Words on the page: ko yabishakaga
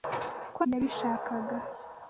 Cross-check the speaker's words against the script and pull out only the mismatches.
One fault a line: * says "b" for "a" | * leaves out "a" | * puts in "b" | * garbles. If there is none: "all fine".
all fine